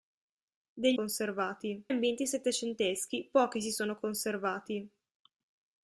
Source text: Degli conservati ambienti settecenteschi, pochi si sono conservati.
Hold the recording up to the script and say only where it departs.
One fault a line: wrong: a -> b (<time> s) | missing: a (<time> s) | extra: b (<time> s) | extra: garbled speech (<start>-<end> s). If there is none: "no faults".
no faults